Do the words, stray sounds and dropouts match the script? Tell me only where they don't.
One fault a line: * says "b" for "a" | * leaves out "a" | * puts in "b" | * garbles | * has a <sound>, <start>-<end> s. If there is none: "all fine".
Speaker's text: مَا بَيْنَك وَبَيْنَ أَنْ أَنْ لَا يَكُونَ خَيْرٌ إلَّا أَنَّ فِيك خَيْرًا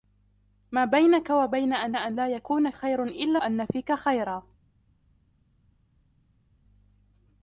all fine